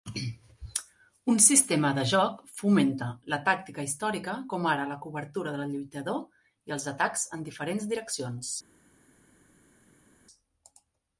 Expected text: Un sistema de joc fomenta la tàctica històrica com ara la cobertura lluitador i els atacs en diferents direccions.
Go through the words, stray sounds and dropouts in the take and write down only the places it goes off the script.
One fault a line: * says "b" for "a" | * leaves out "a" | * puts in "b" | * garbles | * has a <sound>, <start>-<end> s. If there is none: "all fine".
* puts in "del"